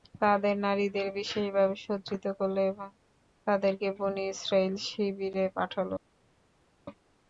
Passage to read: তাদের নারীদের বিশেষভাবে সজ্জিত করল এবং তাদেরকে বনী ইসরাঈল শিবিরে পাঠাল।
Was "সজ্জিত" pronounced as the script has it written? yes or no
yes